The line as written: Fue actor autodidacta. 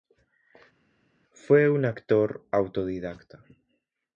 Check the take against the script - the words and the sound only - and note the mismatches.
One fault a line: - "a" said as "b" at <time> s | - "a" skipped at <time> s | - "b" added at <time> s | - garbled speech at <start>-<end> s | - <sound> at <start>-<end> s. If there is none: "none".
- "un" added at 1.7 s